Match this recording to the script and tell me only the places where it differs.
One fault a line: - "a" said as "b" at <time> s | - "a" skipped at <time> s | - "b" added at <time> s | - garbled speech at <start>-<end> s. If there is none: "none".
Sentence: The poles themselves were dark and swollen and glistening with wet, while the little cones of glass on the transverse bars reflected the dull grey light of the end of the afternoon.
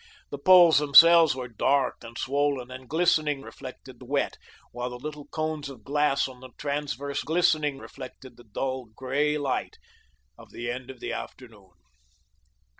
- "with" said as "reflected" at 3.4 s
- "bars" said as "glistening" at 7.3 s